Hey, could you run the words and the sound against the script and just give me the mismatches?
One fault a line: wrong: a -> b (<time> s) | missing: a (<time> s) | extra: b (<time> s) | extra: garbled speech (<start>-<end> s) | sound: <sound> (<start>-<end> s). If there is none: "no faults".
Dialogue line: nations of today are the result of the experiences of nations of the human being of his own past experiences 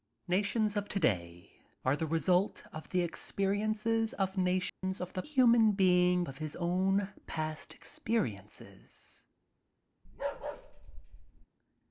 sound: dropout (4.7-4.8 s)
sound: bark (10.0-11.5 s)